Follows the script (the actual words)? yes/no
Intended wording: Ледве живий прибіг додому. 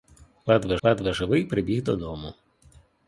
no